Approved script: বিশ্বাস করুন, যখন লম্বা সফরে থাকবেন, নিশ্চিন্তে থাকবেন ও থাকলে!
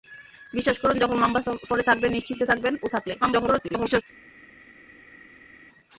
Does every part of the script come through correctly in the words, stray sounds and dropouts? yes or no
no